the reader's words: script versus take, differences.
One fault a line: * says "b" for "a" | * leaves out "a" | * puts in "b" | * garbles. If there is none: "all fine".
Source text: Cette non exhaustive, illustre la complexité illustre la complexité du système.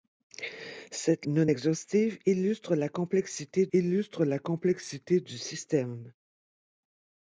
all fine